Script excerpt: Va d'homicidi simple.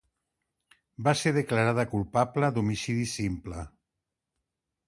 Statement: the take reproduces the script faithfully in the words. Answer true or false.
false